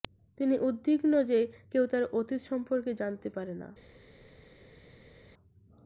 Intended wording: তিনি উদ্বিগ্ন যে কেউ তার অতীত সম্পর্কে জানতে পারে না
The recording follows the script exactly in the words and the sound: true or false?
true